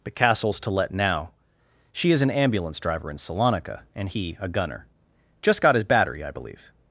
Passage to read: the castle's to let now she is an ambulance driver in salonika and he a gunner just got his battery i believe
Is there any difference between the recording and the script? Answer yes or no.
yes